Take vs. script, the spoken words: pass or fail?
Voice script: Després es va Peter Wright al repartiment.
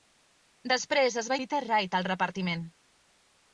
pass